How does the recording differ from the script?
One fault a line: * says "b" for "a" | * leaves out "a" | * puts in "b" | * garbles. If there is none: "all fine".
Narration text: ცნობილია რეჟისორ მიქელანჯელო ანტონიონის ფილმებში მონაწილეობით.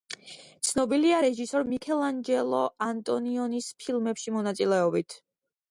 all fine